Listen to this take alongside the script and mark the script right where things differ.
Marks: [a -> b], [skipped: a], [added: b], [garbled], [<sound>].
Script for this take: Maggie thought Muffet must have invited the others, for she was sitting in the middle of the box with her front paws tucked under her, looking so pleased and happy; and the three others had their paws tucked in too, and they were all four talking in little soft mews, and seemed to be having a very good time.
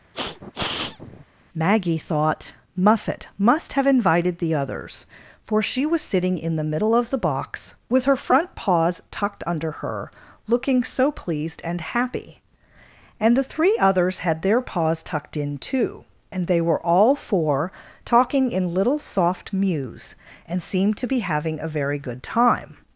[sniff] Maggie thought Muffet must have invited the others, for she was sitting in the middle of the box with her front paws tucked under her, looking so pleased and happy; and the three others had their paws tucked in too, and they were all four talking in little soft mews, and seemed to be having a very good time.